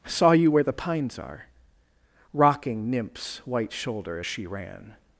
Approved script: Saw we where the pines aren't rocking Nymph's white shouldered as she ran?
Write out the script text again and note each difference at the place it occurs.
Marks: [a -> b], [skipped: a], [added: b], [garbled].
Saw [we -> you] where the pines [aren't -> are] rocking Nymph's white [shouldered -> shoulder] as she ran?